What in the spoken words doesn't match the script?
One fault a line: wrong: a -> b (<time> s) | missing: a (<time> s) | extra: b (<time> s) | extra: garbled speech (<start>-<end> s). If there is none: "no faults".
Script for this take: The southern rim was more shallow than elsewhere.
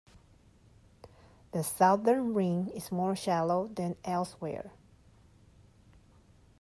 wrong: was -> is (2.7 s)